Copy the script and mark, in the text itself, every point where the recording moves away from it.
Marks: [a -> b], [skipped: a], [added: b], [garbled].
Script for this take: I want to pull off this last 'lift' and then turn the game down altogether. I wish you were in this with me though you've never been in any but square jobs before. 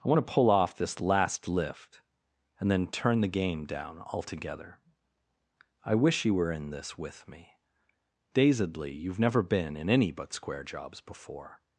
I want to pull off this last 'lift' and then turn the game down altogether. I wish you were in this with me [though -> dazedly] you've never been in any but square jobs before.